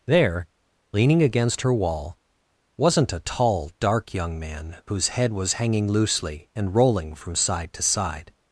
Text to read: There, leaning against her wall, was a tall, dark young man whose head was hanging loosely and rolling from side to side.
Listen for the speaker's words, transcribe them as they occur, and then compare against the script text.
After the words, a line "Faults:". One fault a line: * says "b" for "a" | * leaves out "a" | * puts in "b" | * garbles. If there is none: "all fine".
There, leaning against her wall, wasn't a tall, dark young man whose head was hanging loosely and rolling from side to side.
Faults:
* says "wasn't" for "was"